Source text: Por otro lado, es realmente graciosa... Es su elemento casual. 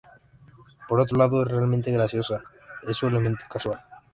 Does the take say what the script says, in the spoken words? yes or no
yes